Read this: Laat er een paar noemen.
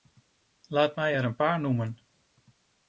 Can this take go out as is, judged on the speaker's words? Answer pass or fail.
fail